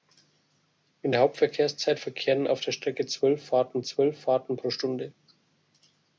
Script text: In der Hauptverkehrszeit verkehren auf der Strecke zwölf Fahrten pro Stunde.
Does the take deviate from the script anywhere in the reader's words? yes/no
yes